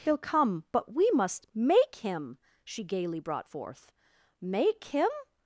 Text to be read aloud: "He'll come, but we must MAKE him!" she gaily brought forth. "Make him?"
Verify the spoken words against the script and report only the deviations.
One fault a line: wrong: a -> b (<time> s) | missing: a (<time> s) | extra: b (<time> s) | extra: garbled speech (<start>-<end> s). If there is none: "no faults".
no faults